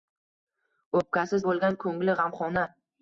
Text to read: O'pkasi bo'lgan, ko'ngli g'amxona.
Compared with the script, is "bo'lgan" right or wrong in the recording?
right